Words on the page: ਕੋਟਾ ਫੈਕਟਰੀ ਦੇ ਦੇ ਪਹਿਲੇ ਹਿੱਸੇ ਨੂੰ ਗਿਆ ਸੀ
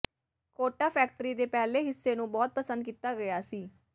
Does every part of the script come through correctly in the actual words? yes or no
no